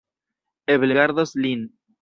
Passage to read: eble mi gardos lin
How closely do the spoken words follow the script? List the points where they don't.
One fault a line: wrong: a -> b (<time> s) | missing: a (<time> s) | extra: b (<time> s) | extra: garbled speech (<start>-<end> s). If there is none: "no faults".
missing: mi (0.9 s)